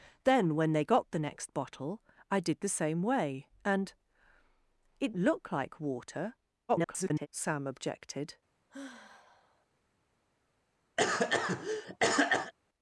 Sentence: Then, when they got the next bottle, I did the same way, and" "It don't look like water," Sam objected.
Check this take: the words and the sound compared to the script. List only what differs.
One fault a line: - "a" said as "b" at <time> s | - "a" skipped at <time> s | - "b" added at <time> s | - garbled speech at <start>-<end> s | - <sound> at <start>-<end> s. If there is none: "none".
- "don't" skipped at 5.1 s
- garbled speech at 6.7-7.3 s
- sigh at 8.7-9.7 s
- cough at 11.0-12.5 s